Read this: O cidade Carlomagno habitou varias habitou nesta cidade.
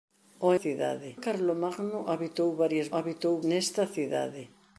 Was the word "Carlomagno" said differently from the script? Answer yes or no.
no